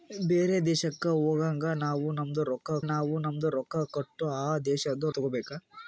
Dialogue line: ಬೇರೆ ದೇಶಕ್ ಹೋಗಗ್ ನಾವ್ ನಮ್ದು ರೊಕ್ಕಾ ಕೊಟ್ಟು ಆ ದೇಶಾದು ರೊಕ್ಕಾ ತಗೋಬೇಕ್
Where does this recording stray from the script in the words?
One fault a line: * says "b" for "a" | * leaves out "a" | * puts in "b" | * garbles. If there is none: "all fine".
* puts in "ನಾವ್ ನಮ್ದು ರೊಕ್ಕಾ"
* leaves out "ರೊಕ್ಕಾ"